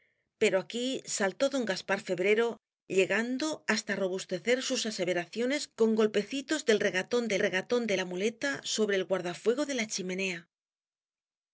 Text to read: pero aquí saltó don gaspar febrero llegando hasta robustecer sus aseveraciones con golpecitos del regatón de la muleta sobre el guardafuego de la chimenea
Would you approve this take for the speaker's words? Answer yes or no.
no